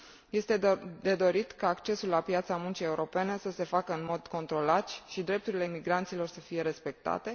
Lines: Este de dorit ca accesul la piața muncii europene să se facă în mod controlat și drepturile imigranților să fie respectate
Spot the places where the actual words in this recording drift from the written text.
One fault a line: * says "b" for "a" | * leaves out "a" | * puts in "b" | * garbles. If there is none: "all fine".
all fine